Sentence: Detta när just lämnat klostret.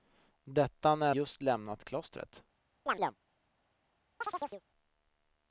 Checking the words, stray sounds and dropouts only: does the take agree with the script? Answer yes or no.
no